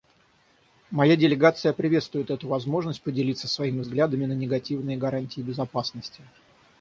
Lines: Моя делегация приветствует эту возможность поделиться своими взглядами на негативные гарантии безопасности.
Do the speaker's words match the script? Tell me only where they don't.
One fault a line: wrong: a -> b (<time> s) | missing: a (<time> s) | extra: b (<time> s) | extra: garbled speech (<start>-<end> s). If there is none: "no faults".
no faults